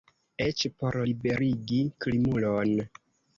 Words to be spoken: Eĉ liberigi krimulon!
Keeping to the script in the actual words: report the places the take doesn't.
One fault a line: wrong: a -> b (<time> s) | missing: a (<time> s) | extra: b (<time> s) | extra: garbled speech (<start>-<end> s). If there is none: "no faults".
extra: por (0.8 s)